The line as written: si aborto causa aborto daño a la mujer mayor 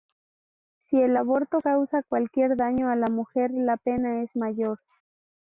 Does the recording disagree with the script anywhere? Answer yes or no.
yes